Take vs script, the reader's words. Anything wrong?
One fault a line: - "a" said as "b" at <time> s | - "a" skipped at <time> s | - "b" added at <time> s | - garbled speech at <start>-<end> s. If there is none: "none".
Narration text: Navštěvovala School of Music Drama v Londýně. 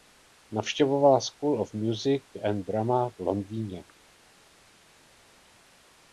- "and" added at 2.4 s